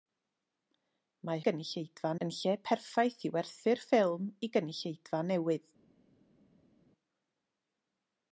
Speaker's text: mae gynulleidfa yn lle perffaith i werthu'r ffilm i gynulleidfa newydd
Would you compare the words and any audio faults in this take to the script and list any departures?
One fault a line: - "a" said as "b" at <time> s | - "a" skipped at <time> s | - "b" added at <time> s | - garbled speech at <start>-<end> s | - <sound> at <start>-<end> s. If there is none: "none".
none